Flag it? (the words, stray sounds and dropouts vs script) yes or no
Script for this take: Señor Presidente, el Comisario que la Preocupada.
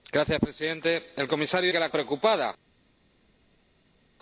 no